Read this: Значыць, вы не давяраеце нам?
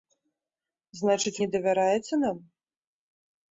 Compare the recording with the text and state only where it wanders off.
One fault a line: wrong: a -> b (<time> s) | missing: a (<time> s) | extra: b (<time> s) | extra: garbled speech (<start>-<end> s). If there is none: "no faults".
missing: вы (1.4 s)